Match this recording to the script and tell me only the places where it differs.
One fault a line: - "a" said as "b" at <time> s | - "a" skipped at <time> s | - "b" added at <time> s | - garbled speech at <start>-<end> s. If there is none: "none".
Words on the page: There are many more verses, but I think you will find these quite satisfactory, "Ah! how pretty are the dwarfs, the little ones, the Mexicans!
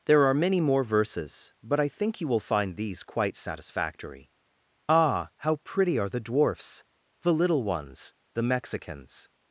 none